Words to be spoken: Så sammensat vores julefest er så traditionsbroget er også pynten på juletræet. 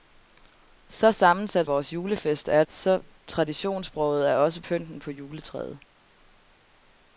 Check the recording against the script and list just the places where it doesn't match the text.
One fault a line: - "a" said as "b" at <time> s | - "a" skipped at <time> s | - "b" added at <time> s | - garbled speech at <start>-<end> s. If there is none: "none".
none